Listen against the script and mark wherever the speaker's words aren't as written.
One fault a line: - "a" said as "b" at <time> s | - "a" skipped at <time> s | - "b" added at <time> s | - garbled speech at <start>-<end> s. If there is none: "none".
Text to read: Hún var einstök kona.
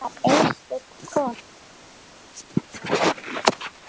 none